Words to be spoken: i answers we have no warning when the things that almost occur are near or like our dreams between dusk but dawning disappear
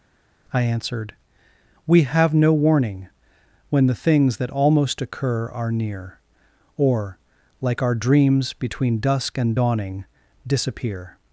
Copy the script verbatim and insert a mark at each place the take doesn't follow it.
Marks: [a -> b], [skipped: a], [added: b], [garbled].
i [answers -> answered] we have no warning when the things that almost occur are near or like our dreams between dusk [but -> and] dawning disappear